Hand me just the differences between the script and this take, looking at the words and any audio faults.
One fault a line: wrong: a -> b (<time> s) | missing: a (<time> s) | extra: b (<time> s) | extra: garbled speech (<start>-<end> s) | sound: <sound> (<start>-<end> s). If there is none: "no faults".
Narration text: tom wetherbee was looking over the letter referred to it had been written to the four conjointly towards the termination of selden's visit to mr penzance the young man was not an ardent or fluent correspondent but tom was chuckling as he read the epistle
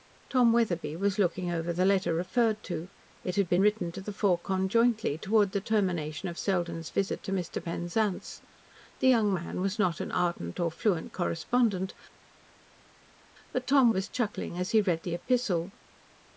no faults